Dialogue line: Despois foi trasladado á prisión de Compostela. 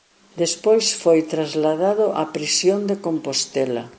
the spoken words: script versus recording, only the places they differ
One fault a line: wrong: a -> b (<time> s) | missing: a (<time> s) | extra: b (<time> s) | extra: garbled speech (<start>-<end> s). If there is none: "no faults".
no faults